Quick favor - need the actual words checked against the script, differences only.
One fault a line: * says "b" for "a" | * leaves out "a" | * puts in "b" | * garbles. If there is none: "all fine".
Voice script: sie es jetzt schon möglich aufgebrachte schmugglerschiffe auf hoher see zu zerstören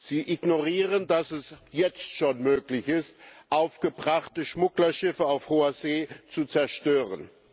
* puts in "ignorieren dass"
* puts in "ist"